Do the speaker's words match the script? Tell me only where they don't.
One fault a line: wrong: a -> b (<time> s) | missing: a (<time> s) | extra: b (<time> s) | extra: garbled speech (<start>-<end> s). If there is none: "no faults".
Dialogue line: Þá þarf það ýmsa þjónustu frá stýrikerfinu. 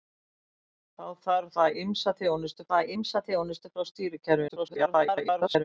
extra: það ýmsa þjónustu (2.7 s)
extra: garbled speech (4.5-5.6 s)